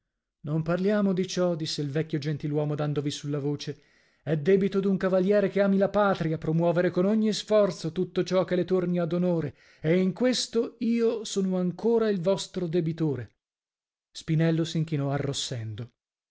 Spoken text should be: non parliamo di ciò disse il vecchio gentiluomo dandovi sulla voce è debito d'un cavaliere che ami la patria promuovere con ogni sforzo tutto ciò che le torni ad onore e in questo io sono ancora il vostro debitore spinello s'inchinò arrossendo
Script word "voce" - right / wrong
right